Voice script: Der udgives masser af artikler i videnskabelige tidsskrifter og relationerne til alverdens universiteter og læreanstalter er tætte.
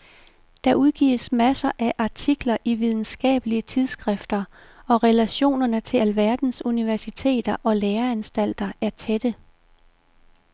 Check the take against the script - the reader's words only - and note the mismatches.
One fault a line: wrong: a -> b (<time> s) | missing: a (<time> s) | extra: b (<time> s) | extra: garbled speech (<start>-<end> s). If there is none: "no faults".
no faults